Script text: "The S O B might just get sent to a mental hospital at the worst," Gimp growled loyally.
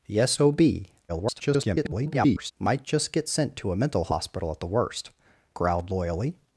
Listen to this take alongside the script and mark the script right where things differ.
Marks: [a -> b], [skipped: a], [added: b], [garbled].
"The S O B [garbled] might just get sent to a mental hospital at the worst," [skipped: Gimp] growled loyally.